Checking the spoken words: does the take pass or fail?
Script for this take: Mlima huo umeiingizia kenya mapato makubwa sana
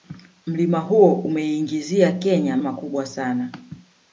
fail